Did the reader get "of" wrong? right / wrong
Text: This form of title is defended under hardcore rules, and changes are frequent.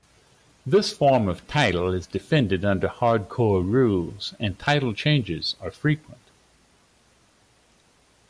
right